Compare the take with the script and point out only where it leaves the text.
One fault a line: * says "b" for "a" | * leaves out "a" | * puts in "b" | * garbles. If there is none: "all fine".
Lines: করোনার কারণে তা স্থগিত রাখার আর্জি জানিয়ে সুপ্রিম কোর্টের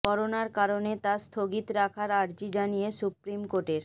all fine